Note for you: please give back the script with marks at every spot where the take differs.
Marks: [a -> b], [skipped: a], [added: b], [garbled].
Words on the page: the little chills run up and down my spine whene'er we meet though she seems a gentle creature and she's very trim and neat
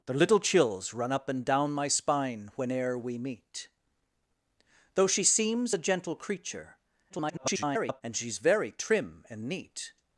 the little chills run up and down my spine whene'er we meet though she seems a gentle creature [garbled] and she's very trim and neat